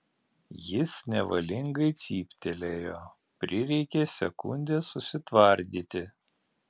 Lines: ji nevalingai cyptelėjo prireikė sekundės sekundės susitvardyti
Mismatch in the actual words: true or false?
true